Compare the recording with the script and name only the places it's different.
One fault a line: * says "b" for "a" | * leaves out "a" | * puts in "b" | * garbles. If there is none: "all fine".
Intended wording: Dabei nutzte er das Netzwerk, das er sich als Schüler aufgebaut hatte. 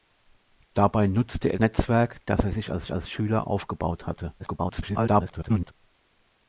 * leaves out "das"
* puts in "als"
* garbles